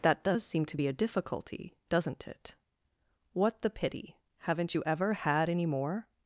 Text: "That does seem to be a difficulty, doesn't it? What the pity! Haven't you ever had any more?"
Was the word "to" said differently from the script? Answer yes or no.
no